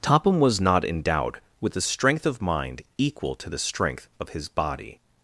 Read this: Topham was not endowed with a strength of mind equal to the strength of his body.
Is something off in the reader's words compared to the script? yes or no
no